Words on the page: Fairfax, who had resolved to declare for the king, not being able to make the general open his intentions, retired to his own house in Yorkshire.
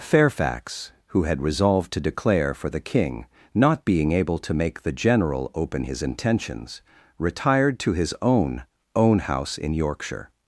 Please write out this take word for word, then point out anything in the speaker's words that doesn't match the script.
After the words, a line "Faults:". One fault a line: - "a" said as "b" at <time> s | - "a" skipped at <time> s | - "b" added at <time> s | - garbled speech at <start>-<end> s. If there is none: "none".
Fairfax, who had resolved to declare for the king, not being able to make the general open his intentions, retired to his own own house in Yorkshire.
Faults:
- "own" added at 8.9 s